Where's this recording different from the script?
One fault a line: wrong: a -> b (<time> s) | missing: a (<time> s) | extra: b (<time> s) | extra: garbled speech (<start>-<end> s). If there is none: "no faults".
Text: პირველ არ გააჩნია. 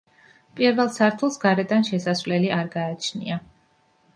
extra: სართულს გარედან შესასვლელი (0.9 s)